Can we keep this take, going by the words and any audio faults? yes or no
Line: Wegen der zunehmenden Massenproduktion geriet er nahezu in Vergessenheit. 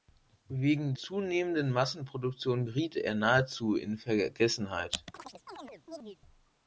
no